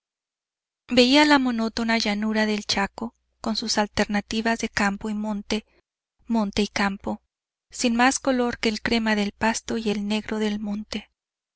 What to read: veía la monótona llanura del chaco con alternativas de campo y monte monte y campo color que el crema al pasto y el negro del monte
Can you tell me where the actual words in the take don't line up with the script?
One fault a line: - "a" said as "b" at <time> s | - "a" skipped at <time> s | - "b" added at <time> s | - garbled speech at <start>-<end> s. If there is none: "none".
- "sus" added at 3.5 s
- "sin más" added at 7.7 s
- "al" said as "del" at 9.2 s